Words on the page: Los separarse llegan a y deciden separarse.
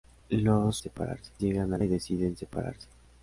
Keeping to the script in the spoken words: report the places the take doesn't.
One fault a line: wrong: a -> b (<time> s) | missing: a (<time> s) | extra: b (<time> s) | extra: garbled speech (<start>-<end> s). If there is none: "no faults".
no faults